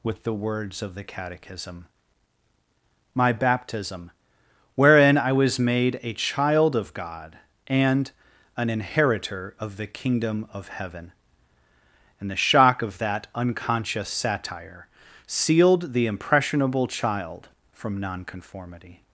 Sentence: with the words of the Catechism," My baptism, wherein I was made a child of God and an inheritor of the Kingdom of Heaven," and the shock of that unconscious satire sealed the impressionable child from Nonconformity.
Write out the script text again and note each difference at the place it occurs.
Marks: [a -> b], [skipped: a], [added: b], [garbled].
with the words of the Catechism," My baptism, wherein I was made a child of God and an inheritor of the Kingdom of Heaven," and the shock of that unconscious satire sealed the impressionable child from Nonconformity.